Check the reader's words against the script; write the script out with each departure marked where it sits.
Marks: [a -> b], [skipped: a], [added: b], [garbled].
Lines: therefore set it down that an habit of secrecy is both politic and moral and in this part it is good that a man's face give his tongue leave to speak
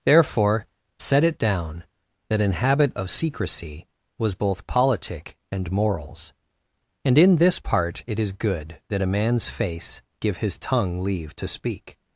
therefore set it down that an habit of secrecy [is -> was] both politic and [moral -> morals] and in this part it is good that a man's face give his tongue leave to speak